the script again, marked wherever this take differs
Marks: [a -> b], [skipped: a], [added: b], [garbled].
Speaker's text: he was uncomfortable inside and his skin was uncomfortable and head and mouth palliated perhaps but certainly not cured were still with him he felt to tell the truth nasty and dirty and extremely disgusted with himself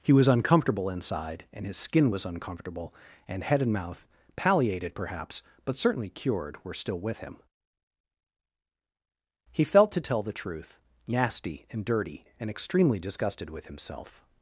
he was uncomfortable inside and his skin was uncomfortable and head and mouth palliated perhaps but certainly [skipped: not] cured were still with him he felt to tell the truth nasty and dirty and extremely disgusted with himself